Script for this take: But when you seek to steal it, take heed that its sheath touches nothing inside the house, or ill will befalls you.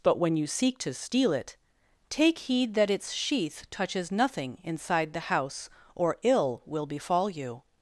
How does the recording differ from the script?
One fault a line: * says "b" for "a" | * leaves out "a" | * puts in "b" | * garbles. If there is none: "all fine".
* says "befall" for "befalls"